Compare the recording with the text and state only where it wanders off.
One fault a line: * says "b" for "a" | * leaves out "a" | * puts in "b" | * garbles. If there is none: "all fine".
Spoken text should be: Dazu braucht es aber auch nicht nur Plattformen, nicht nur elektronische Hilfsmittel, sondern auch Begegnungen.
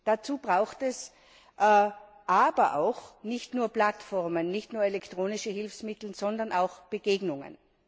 all fine